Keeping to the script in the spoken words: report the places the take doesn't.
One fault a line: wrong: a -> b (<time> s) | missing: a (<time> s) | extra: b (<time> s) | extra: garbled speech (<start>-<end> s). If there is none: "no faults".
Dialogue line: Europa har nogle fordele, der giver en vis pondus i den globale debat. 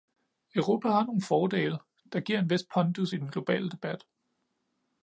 no faults